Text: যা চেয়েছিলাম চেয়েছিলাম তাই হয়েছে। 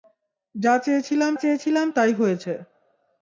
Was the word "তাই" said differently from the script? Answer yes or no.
no